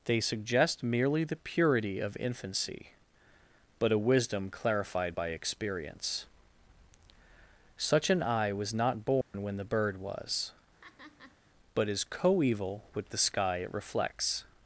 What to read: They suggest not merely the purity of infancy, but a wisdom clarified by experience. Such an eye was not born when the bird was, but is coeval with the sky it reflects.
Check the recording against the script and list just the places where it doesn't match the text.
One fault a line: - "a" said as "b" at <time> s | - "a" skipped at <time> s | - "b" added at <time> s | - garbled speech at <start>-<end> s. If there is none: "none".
- "not" skipped at 0.8 s